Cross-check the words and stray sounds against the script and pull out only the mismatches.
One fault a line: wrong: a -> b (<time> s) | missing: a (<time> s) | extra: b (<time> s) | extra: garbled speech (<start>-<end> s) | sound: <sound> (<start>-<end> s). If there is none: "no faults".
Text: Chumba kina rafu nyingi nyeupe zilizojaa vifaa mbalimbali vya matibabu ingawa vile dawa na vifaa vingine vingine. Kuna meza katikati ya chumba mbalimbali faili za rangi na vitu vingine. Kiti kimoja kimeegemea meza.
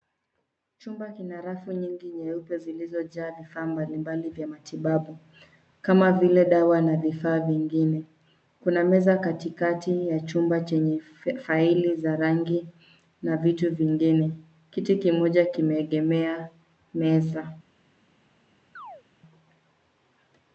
wrong: ingawa -> kama (5.8 s)
missing: vingine (8.0 s)
wrong: mbalimbali -> chenye (10.6 s)
sound: chirp (18.8-19.0 s)